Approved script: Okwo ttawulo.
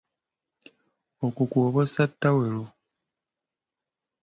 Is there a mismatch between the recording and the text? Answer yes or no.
yes